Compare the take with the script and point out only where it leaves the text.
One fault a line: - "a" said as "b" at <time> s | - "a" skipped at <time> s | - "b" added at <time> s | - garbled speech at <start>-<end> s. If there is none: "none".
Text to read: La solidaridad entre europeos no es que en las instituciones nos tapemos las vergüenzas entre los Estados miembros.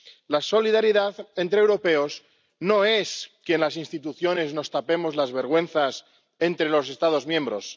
none